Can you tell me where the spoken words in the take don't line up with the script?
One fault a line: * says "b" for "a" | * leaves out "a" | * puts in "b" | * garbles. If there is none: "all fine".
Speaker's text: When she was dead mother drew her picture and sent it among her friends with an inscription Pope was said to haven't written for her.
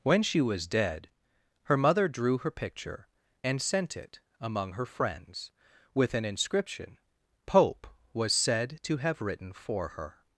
* puts in "her"
* says "have" for "haven't"